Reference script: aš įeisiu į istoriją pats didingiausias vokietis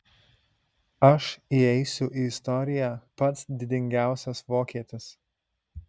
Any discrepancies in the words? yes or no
no